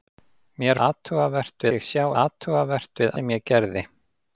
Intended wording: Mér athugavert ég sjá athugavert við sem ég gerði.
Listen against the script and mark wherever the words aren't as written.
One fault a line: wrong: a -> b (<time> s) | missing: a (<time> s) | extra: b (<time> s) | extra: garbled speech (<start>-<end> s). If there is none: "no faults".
no faults